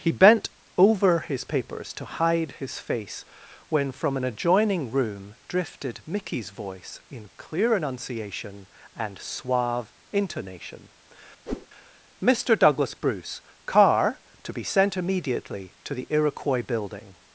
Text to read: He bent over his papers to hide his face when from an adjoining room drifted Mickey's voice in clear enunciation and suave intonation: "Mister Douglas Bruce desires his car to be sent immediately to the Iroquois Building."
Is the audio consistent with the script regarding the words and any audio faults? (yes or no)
no